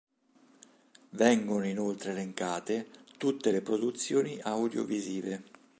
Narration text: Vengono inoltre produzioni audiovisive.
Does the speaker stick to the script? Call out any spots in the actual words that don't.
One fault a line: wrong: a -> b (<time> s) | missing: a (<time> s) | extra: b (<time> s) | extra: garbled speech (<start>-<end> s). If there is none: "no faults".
extra: elencate tutte le (2.1 s)